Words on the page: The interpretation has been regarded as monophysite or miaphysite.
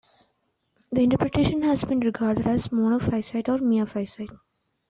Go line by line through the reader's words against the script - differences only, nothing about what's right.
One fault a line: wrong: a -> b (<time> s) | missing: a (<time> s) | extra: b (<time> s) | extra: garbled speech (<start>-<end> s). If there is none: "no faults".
no faults